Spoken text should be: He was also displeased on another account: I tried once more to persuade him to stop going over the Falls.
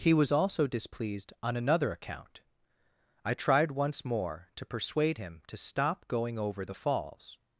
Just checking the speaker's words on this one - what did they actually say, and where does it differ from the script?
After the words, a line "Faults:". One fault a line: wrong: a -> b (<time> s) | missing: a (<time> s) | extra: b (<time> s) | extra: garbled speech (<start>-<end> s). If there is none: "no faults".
He was also displeased on another account: I tried once more to persuade him to stop going over the Falls.
Faults:
no faults